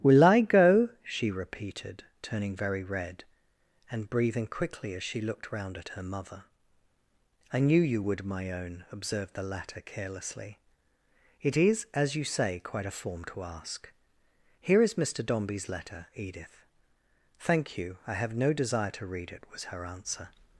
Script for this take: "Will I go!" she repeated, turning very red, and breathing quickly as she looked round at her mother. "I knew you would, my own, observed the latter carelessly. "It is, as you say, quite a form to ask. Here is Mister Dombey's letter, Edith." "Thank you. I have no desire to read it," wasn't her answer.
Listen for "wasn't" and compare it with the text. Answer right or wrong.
wrong